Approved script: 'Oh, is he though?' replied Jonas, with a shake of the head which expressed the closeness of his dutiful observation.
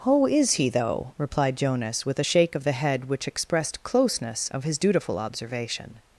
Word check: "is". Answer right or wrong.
right